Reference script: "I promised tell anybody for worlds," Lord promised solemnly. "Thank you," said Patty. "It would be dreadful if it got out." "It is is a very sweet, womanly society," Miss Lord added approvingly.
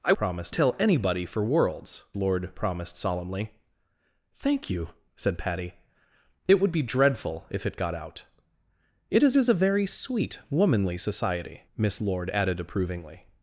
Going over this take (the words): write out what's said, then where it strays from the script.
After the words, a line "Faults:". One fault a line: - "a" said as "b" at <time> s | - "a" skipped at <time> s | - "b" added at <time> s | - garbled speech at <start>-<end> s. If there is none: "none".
"I promised tell anybody for worlds," Lord promised solemnly. "Thank you," said Patty. "It would be dreadful if it got out." "It is is a very sweet, womanly society," Miss Lord added approvingly.
Faults:
none